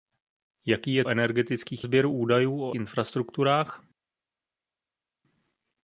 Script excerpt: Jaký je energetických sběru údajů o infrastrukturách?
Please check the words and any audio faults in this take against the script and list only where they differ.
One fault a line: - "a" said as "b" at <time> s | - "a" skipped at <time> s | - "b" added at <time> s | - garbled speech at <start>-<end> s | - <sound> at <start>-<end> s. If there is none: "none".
none